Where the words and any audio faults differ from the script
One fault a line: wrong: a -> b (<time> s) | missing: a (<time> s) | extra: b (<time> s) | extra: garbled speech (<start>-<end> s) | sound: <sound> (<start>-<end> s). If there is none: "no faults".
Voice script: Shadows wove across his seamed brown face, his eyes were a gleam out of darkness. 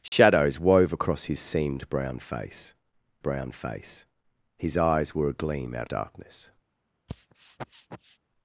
sound: dropout (0.1-0.1 s)
extra: brown face (3.2 s)
missing: of (5.9 s)
sound: sniff (7.1-8.2 s)